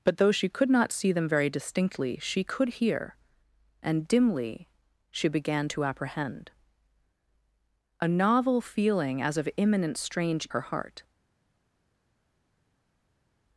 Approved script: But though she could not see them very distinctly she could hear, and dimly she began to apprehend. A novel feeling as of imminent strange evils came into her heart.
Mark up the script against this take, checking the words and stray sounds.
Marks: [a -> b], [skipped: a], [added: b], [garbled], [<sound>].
But though she could not see them very distinctly she could hear, and dimly she began to apprehend. A novel feeling as of imminent strange [skipped: evils came into] her heart.